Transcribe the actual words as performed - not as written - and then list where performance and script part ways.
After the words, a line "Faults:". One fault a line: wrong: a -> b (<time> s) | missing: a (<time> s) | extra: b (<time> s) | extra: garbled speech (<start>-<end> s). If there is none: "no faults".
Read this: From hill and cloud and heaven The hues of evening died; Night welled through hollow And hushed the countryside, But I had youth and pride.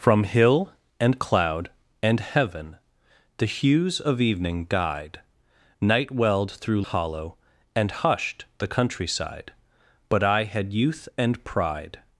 From hill and cloud and heaven The hues of evening died; Night welled through hollow And hushed the countryside, But I had youth and pride.
Faults:
no faults